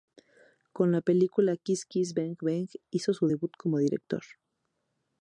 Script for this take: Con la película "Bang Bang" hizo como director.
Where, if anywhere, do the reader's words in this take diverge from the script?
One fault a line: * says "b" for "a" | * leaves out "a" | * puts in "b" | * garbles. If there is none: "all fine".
* puts in "Kiss Kiss"
* puts in "su debut"